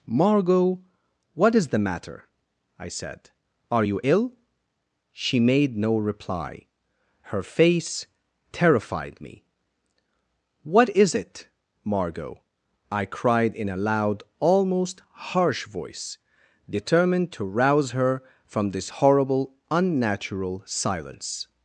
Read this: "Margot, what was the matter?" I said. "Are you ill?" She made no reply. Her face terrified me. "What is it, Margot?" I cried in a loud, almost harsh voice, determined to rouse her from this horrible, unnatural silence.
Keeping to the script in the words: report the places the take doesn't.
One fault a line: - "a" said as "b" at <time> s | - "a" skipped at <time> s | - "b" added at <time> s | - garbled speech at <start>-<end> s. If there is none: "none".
- "was" said as "is" at 1.5 s